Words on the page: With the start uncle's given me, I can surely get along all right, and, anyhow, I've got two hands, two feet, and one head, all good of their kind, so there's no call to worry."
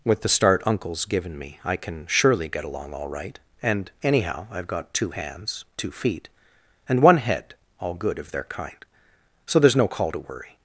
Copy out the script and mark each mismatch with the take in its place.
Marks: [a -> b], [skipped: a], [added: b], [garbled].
With the start uncle's given me, I can surely get along all right, and, anyhow, I've got two hands, two feet, and one head, all good of their kind, so there's no call to worry."